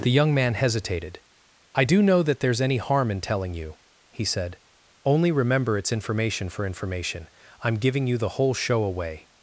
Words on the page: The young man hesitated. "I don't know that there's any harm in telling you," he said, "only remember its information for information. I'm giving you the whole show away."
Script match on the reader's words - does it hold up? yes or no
no